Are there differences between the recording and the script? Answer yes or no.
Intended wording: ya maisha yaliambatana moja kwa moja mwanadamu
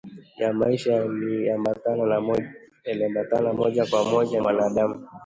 no